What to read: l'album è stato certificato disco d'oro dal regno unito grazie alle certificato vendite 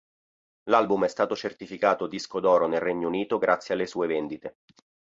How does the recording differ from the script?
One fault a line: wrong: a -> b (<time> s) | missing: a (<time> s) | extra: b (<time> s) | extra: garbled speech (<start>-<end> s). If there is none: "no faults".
wrong: dal -> nel (2.7 s)
wrong: certificato -> sue (3.8 s)